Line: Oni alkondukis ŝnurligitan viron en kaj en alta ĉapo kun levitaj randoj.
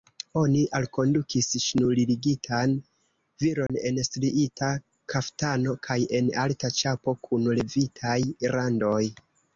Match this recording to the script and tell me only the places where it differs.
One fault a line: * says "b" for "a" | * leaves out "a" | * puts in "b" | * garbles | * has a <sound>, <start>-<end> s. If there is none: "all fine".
* has a dropout, 3.7-3.7 s
* puts in "striita kaftano"